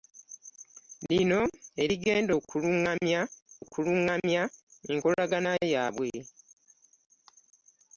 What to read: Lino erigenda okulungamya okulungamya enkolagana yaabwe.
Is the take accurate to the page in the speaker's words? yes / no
yes